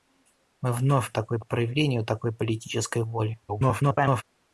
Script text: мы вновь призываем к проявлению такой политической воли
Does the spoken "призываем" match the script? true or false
false